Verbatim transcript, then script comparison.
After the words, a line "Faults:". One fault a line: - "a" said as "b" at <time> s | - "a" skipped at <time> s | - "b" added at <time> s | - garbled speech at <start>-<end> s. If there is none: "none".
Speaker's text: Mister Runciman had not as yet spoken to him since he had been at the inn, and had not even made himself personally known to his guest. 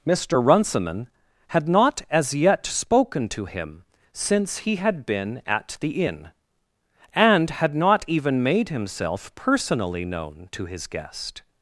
Mister Runciman had not as yet spoken to him since he had been at the inn, and had not even made himself personally known to his guest.
Faults:
none